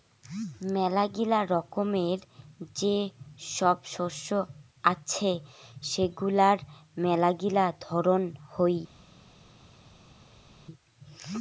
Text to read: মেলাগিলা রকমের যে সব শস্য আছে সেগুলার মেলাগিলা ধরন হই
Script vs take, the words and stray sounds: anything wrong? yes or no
no